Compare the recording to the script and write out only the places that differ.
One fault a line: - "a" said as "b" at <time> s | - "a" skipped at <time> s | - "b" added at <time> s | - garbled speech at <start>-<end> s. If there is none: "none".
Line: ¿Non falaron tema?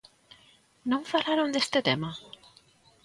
- "deste" added at 1.6 s